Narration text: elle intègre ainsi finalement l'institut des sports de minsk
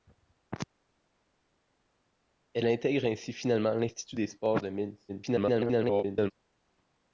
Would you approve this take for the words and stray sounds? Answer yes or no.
no